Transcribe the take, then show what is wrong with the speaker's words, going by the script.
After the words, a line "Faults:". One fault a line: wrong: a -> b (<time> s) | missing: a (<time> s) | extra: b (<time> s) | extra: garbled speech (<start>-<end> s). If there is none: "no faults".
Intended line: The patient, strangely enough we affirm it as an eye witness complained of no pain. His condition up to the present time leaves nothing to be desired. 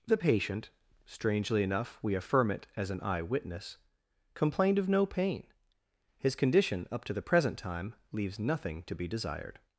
The patient, strangely enough we affirm it as an eye witness complained of no pain. His condition up to the present time leaves nothing to be desired.
Faults:
no faults